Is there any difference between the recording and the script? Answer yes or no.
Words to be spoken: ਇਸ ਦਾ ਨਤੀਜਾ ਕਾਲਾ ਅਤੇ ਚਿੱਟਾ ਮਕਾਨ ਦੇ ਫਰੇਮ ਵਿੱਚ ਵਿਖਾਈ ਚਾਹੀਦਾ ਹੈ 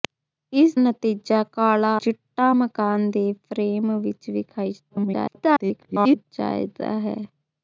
yes